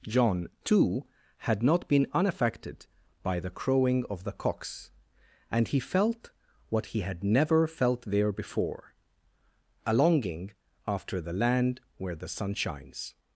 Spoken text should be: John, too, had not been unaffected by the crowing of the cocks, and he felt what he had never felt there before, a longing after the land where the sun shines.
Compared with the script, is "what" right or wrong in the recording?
right